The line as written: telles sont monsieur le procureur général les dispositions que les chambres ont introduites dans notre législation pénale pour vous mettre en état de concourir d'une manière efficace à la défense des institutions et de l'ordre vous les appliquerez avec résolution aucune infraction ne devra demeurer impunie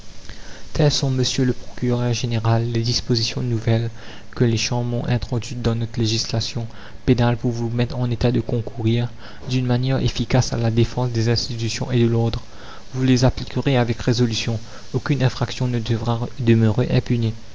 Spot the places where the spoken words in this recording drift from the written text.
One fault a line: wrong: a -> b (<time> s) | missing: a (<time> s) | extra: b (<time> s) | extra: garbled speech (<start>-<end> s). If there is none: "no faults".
extra: nouvelles (3.4 s)